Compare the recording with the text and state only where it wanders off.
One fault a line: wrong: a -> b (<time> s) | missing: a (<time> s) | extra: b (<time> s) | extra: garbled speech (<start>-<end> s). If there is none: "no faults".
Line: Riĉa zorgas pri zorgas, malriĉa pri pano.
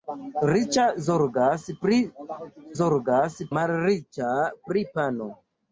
no faults